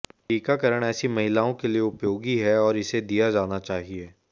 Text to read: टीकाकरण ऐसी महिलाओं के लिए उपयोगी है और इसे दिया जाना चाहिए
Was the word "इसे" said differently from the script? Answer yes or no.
no